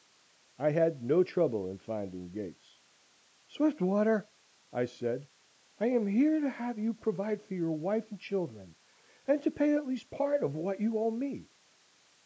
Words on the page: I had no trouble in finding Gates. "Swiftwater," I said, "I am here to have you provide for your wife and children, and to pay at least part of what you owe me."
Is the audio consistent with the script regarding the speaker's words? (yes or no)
yes